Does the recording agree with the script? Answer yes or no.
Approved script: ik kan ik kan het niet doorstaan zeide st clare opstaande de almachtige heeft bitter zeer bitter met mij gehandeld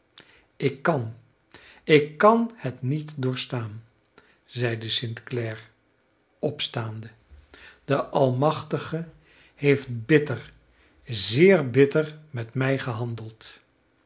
yes